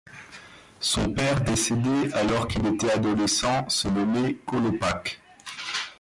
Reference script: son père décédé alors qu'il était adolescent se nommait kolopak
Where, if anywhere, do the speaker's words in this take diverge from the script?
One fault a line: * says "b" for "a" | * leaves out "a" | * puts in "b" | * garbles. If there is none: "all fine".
all fine